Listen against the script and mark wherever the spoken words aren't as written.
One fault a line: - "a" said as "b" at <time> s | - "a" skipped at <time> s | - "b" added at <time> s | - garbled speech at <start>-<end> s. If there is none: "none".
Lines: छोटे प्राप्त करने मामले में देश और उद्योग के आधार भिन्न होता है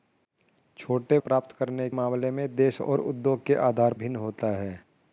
none